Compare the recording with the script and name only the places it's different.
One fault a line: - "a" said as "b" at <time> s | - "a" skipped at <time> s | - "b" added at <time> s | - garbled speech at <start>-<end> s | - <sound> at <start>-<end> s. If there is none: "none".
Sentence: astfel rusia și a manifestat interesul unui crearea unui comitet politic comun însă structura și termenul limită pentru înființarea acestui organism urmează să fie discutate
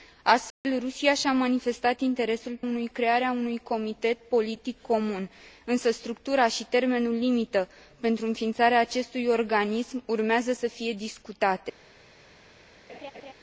- dropout at 0.5-0.6 s
- laugh at 12.9-13.3 s